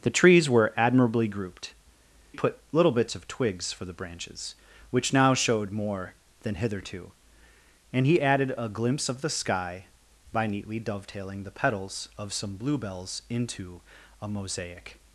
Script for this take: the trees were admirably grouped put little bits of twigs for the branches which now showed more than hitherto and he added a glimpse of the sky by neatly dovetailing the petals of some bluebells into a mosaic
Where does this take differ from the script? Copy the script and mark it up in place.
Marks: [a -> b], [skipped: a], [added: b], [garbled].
the trees were admirably grouped put little bits of twigs for the branches which now showed more than hitherto and he added a glimpse of the sky by neatly dovetailing the petals of some bluebells into a mosaic